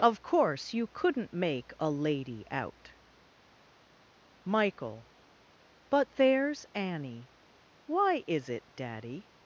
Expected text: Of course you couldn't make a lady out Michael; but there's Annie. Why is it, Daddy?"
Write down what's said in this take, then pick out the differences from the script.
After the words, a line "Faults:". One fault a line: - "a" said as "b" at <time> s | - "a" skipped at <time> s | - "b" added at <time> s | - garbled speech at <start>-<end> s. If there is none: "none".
Of course you couldn't make a lady out Michael; but there's Annie. Why is it, Daddy?"
Faults:
none